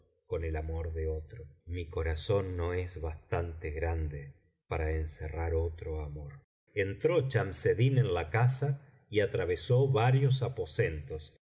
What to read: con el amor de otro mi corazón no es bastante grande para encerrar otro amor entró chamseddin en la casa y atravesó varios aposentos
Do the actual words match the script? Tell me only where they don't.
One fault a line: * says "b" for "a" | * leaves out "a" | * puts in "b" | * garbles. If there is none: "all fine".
all fine